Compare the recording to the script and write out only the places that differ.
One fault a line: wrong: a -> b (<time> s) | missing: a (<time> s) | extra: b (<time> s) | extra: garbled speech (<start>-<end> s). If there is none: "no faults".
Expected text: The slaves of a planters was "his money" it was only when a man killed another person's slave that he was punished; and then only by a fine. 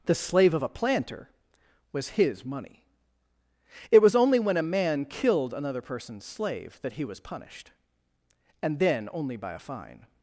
wrong: slaves -> slave (0.1 s)
wrong: planters -> planter (0.7 s)